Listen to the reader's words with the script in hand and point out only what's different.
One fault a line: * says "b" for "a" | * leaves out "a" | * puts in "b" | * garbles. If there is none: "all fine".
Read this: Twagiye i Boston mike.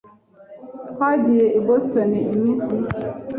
* puts in "iminsi"